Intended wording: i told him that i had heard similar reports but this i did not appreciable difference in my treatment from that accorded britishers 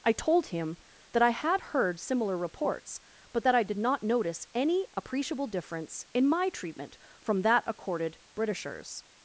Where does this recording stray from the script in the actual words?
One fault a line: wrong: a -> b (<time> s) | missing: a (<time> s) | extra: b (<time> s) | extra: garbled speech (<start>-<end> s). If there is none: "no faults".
wrong: this -> that (3.4 s)
extra: notice any (4.0 s)